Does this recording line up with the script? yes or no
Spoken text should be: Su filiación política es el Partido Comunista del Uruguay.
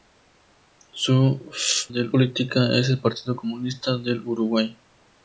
no